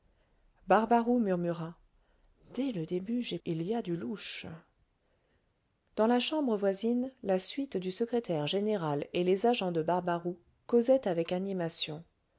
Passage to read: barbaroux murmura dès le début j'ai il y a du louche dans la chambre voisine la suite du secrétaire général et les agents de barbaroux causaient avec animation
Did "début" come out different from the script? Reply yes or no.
no